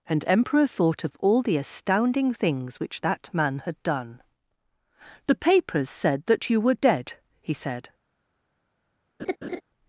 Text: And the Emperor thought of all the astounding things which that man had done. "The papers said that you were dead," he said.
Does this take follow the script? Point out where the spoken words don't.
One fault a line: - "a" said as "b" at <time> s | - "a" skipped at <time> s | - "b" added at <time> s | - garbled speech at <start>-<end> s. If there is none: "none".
- "the" skipped at 0.2 s